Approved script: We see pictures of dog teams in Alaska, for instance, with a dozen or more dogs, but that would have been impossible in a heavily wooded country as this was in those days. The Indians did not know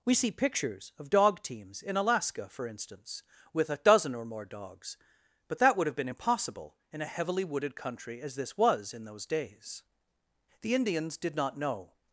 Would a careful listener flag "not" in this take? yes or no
no